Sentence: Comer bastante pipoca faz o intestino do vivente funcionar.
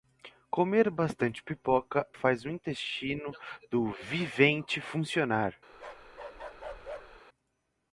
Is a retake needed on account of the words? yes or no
no